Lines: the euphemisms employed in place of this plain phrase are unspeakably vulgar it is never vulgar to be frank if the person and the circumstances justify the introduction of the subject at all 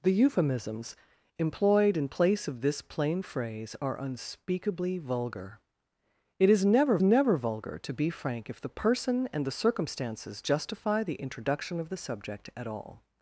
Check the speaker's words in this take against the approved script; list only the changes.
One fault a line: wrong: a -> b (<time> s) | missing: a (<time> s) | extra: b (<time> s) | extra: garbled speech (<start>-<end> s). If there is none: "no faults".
extra: never (7.0 s)